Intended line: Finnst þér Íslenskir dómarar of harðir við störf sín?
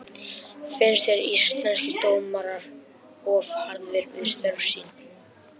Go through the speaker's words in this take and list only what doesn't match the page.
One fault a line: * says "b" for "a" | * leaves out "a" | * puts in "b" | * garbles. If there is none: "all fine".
all fine